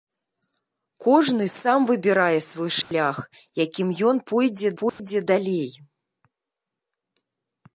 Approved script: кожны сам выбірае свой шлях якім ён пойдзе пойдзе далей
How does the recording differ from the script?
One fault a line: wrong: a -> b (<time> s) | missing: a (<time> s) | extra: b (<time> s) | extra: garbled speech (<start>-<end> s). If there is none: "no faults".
no faults